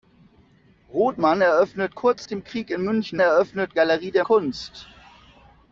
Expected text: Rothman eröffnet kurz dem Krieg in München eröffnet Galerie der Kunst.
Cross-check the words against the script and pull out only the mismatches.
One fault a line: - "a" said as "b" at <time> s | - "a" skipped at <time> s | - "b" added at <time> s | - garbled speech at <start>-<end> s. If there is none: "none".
none